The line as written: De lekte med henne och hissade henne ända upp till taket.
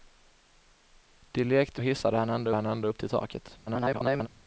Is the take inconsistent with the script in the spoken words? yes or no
yes